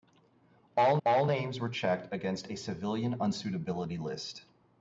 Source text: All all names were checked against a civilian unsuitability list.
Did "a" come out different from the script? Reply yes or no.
no